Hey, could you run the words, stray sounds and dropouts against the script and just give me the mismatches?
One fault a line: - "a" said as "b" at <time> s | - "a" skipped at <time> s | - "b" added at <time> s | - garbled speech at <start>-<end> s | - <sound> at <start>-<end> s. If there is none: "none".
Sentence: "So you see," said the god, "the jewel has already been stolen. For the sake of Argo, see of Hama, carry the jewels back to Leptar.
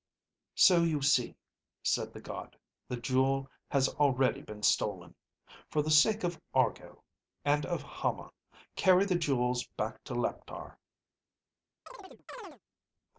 - "see" said as "and" at 7.5 s
- chirp at 11.9-12.6 s